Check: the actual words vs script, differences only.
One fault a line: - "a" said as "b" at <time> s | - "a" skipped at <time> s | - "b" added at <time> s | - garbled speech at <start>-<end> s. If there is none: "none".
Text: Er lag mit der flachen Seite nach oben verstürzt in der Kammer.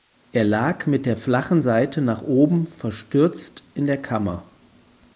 none